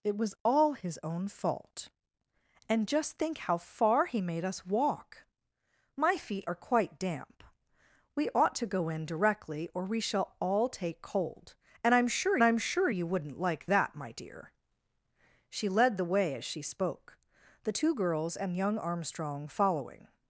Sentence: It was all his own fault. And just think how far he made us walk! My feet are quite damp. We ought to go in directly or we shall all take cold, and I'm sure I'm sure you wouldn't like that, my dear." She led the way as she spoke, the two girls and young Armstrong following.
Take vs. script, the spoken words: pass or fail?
pass